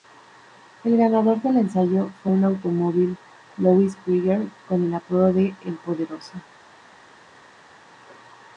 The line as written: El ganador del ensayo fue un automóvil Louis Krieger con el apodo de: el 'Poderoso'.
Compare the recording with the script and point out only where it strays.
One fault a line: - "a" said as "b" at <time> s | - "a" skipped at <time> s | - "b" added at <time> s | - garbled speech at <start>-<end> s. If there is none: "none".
none